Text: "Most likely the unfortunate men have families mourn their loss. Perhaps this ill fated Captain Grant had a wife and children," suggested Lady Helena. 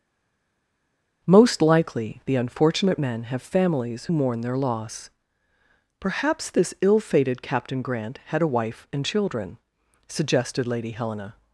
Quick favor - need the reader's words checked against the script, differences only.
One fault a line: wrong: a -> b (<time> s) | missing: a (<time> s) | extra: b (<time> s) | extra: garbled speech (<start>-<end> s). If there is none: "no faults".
no faults